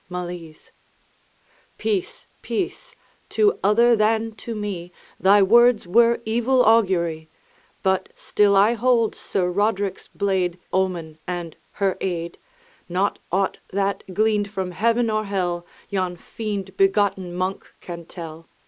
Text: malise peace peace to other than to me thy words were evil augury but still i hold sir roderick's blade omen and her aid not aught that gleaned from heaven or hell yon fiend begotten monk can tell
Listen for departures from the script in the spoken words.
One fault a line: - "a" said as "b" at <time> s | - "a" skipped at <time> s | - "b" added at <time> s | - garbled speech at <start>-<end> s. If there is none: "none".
none